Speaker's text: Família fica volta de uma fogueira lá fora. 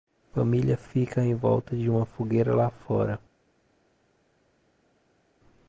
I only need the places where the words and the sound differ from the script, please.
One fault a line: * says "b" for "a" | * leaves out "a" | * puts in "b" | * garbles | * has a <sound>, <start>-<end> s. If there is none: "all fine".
* puts in "em"